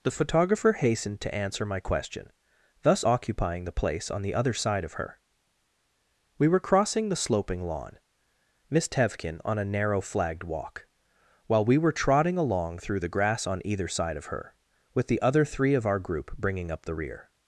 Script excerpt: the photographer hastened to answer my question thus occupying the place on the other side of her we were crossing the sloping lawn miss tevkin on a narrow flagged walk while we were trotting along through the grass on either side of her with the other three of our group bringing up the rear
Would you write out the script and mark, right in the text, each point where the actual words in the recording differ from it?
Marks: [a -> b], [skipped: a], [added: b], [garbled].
the photographer hastened to answer my question thus occupying the place on the other side of her we were crossing the sloping lawn miss tevkin on a narrow flagged walk while we were trotting along through the grass on either side of her with the other three of our group bringing up the rear